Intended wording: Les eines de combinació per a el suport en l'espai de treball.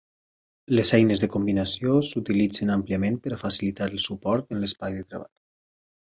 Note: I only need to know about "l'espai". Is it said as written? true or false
true